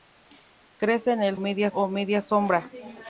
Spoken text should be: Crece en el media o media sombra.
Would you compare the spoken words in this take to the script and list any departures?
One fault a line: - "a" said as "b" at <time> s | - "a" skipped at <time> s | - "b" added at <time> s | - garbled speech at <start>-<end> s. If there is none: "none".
none